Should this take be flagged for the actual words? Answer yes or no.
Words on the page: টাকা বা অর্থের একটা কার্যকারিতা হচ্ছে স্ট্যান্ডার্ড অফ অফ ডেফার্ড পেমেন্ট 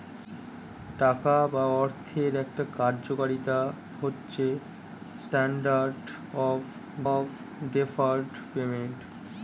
no